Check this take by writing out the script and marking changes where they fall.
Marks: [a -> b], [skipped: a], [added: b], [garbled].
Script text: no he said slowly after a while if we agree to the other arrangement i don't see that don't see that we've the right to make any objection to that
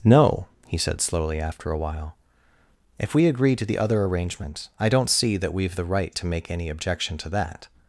no he said slowly after a while if we agree to the other arrangement i don't see that [skipped: don't see that] we've the right to make any objection to that